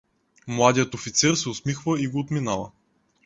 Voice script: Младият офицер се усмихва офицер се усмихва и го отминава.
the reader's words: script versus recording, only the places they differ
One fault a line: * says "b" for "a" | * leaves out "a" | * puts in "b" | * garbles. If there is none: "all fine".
* leaves out "офицер се усмихва"